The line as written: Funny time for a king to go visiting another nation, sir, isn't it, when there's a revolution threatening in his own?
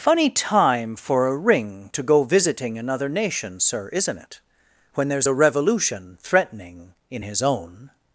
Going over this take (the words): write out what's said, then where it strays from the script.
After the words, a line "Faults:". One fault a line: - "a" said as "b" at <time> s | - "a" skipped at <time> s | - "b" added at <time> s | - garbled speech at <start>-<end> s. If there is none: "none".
Funny time for a ring to go visiting another nation, sir, isn't it, when there's a revolution threatening in his own?
Faults:
- "king" said as "ring" at 1.4 s